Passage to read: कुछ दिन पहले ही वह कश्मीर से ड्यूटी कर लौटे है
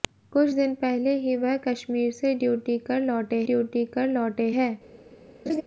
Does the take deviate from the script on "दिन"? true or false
false